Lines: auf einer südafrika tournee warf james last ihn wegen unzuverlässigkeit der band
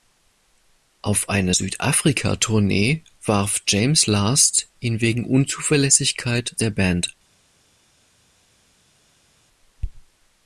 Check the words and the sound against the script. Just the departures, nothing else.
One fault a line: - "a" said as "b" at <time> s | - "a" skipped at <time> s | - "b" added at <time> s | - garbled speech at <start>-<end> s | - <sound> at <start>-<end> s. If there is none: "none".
none